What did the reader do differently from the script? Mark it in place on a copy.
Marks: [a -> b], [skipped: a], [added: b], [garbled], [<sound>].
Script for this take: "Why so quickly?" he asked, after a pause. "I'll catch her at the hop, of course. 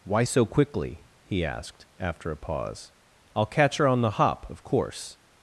"Why so quickly?" he asked, after a pause. "I'll catch her [at -> on] the hop, of course.